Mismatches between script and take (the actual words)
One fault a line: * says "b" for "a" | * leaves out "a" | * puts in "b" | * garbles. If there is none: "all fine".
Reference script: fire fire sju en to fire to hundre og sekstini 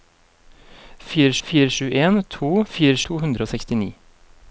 all fine